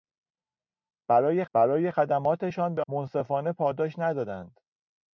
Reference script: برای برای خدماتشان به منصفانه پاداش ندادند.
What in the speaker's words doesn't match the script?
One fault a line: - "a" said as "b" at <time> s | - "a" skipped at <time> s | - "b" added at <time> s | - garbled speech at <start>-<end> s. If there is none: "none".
none